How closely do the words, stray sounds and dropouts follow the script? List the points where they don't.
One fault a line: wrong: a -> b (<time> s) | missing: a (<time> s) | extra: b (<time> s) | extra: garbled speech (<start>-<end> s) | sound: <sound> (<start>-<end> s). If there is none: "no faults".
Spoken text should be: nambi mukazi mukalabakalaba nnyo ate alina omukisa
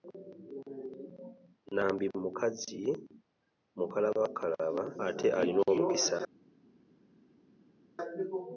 missing: nnyo (4.8 s)